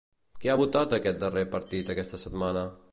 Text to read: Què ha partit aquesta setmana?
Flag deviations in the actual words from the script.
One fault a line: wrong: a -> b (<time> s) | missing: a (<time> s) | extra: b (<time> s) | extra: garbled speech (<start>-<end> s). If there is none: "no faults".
extra: votat aquest darrer (0.6 s)